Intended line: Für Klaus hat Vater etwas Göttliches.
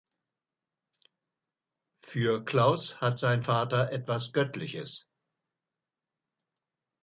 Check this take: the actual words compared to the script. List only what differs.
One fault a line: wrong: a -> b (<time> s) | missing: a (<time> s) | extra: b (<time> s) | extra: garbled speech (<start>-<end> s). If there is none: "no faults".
extra: sein (3.2 s)